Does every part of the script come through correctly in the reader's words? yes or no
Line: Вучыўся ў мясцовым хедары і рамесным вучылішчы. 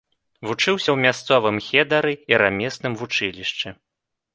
yes